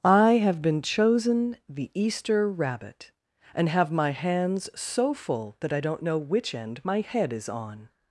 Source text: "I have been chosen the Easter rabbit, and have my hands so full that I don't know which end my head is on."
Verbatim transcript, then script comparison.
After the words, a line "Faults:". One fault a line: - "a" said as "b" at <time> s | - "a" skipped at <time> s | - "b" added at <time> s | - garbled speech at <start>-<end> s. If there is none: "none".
"I have been chosen the Easter rabbit, and have my hands so full that I don't know which end my head is on."
Faults:
none